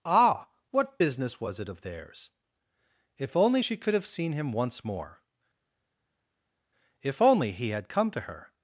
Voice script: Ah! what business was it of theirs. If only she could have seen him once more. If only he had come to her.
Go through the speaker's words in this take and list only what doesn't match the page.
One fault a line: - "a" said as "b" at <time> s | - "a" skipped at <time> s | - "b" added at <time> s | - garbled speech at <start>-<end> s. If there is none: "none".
none